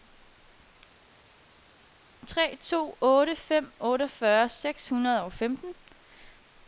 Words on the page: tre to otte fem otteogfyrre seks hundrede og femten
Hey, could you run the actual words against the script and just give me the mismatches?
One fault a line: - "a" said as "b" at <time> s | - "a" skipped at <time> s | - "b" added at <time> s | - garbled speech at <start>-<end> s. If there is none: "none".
none